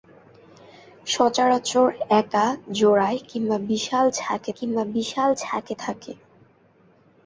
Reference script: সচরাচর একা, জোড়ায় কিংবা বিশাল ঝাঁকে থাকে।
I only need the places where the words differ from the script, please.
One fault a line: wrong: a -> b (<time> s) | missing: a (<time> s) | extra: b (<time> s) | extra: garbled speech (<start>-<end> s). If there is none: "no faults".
extra: কিংবা বিশাল ঝাঁকে (4.6 s)